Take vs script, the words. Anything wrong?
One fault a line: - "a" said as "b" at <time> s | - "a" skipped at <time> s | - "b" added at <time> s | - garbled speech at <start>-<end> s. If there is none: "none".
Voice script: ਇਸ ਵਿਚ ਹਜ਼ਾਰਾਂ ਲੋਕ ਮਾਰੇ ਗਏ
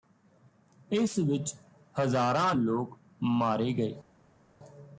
none